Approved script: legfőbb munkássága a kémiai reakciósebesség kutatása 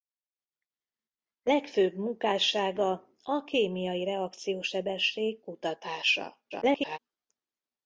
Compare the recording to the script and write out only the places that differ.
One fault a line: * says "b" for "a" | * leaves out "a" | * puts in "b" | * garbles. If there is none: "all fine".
* garbles